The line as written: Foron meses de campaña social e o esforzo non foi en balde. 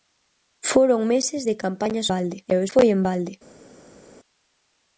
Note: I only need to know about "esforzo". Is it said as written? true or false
false